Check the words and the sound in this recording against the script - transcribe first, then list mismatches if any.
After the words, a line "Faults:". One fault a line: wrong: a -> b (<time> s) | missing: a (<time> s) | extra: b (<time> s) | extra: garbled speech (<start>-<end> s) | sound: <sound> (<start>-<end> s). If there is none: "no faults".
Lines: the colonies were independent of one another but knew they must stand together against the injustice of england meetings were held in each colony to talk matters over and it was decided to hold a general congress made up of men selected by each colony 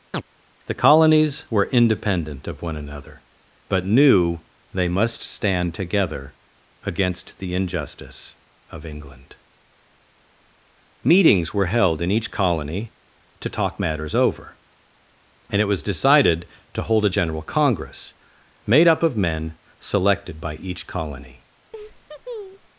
the colonies were independent of one another but knew they must stand together against the injustice of england meetings were held in each colony to talk matters over and it was decided to hold a general congress made up of men selected by each colony
Faults:
sound: chirp (0.1-0.2 s)
sound: laugh (21.7-22.7 s)